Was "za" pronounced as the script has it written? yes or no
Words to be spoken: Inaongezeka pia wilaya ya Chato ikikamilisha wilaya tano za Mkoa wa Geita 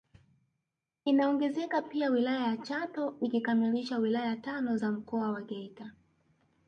yes